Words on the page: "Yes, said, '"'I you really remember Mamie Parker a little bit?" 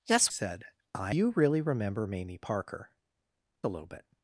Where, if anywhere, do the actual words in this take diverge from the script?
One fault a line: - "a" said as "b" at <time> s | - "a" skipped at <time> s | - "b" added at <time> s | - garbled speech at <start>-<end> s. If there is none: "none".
none